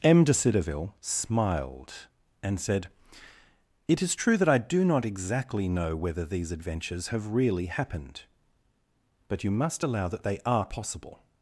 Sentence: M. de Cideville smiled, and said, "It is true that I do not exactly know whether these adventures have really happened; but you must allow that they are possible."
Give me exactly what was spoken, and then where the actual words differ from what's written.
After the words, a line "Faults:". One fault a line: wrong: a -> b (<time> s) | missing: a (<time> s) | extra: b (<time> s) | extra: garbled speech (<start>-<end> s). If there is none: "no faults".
M. de Cideville smiled, and said, "It is true that I do not exactly know whether these adventures have really happened; but you must allow that they are possible."
Faults:
no faults